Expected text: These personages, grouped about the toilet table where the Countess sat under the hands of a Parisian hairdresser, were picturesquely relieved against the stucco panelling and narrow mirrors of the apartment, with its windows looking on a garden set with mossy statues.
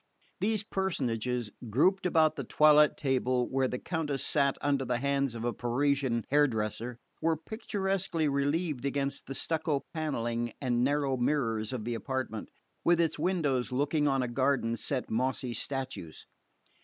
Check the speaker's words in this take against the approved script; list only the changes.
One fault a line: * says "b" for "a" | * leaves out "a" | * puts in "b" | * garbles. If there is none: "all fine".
* leaves out "with"